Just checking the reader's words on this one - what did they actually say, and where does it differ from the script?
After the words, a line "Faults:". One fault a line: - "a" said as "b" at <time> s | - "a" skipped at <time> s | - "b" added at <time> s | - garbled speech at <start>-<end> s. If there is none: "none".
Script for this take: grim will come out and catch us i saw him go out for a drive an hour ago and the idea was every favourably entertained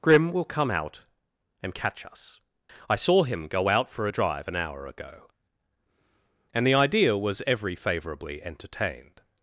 grim will come out and catch us i saw him go out for a drive an hour ago and the idea was every favourably entertained
Faults:
none